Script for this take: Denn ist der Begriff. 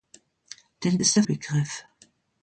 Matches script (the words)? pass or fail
pass